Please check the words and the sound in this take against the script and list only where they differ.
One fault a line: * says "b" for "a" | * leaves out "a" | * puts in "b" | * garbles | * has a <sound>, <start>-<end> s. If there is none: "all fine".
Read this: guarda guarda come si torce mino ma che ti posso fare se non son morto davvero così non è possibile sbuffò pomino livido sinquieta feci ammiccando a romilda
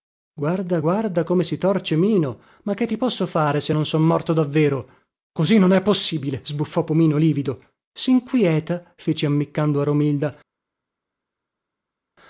all fine